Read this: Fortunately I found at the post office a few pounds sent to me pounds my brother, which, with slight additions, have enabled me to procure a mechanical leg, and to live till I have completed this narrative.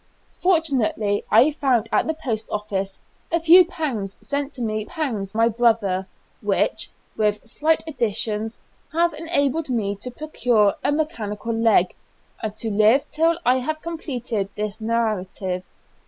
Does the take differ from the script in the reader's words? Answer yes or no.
no